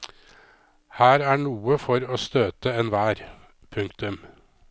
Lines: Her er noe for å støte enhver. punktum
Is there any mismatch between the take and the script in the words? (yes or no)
no